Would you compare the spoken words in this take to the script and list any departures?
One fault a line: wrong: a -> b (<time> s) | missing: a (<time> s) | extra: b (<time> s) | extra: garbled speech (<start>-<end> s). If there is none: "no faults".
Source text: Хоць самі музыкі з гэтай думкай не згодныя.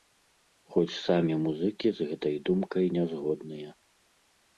no faults